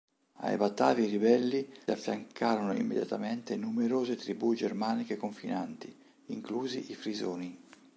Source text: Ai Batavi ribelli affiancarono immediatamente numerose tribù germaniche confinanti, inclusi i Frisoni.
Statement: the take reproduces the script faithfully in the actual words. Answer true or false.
true